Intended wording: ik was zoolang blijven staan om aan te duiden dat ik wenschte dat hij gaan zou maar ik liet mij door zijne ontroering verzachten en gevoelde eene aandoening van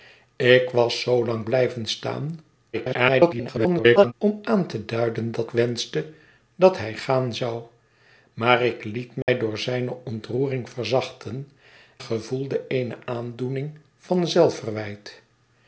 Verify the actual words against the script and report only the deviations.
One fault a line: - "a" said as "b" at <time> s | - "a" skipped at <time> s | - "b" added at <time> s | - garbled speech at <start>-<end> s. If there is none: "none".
- garbled speech at 2.7-4.1 s
- "ik" skipped at 5.5 s
- "en" skipped at 11.5 s